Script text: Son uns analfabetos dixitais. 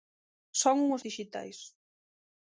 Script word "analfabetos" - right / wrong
wrong